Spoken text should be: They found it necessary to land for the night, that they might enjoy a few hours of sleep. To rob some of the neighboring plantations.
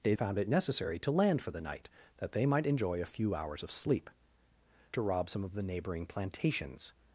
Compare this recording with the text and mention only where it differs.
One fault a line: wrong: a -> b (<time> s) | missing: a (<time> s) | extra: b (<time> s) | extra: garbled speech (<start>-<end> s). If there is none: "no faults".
no faults